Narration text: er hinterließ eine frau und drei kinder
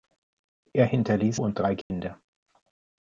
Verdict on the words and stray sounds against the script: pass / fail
fail